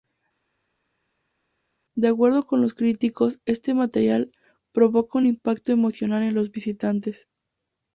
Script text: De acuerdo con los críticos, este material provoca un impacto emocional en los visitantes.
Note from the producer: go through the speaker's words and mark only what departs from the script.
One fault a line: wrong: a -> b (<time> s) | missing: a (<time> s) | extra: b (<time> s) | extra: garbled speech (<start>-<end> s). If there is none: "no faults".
no faults